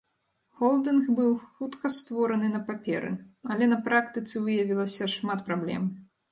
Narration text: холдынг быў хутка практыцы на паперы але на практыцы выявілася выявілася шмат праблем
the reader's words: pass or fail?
fail